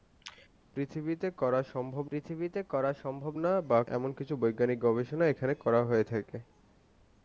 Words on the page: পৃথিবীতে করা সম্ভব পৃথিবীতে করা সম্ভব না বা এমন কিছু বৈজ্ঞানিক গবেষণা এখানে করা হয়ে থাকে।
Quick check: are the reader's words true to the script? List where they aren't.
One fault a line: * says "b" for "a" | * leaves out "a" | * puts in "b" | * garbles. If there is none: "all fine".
all fine